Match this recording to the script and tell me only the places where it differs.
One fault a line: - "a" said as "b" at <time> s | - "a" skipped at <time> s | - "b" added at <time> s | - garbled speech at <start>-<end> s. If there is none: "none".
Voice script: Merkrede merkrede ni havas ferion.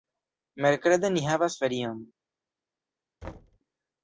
- "merkrede" skipped at 1.1 s